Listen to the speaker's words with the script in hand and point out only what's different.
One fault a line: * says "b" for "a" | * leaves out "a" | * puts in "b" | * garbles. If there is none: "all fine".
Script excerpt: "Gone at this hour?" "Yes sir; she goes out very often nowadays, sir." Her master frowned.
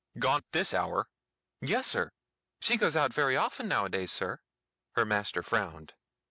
all fine